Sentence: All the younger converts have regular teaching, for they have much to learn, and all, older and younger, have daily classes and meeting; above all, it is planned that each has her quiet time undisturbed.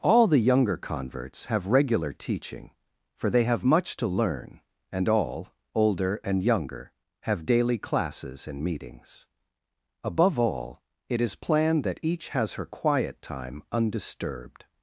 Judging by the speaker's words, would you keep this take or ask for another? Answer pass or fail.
fail